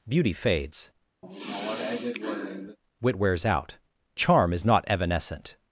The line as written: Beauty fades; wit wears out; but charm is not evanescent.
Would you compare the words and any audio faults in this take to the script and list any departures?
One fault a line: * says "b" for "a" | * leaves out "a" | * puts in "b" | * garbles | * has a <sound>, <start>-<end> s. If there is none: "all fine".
* has a sigh, 1.2-2.8 s
* leaves out "but"